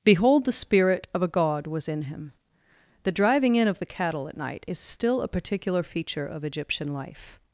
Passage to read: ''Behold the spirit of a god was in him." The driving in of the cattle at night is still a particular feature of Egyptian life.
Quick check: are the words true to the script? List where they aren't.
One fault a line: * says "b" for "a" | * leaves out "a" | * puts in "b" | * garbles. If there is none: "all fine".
all fine